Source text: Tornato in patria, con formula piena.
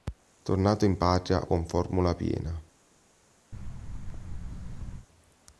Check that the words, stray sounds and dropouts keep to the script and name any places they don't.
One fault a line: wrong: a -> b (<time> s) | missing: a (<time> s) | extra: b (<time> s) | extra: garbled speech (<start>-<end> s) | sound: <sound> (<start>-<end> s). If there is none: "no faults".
sound: thud (3.5-5.1 s)